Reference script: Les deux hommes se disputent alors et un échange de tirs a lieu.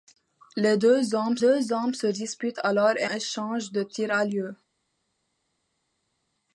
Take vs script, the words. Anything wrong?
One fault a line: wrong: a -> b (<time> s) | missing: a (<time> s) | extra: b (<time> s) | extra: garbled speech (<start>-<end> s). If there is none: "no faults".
extra: deux hommes (1.4 s)
missing: un (3.0 s)